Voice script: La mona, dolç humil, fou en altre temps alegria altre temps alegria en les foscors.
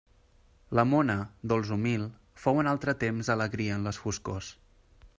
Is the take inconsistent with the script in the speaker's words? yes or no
yes